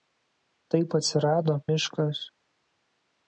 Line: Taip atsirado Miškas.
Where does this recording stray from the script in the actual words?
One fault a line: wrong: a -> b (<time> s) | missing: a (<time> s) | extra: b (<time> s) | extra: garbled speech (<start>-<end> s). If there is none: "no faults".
no faults